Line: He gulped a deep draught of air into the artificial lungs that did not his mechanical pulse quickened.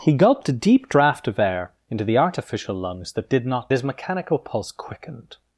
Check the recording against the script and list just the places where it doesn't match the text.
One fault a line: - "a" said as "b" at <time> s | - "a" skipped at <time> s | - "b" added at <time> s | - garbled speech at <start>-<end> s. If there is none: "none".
none